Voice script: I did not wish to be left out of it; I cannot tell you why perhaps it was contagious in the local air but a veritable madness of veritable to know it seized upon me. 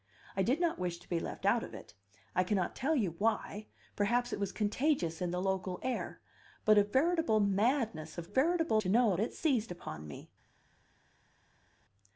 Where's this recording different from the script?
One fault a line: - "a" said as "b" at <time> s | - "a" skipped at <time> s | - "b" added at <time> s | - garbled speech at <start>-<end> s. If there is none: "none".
none